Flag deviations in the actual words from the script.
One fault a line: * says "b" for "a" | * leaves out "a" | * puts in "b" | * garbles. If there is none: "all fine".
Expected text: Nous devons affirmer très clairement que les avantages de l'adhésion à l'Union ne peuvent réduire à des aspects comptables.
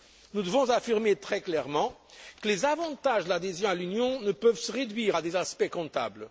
* puts in "se"